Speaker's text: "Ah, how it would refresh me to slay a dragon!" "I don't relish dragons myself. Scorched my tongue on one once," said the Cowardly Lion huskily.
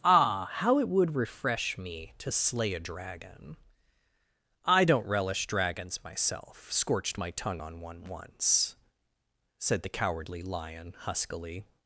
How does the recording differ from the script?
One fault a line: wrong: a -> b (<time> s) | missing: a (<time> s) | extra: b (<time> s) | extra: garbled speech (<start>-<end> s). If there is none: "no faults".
no faults